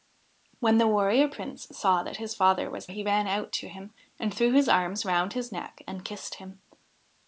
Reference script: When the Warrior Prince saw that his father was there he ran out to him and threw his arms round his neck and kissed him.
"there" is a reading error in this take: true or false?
true